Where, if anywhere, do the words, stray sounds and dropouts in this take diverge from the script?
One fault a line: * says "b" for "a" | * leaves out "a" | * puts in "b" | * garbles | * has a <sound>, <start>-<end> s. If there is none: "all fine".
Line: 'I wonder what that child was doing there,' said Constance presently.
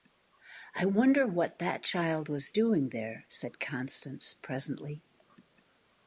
all fine